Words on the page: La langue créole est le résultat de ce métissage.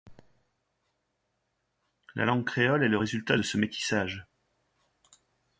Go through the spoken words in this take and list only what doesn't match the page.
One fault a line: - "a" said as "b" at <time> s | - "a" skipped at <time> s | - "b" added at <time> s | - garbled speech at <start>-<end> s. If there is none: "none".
none